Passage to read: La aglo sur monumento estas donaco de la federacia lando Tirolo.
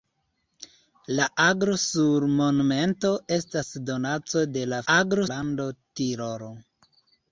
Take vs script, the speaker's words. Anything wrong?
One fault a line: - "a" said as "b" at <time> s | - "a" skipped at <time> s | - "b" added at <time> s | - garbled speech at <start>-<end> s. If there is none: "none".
- "federacia" said as "aglo" at 4.9 s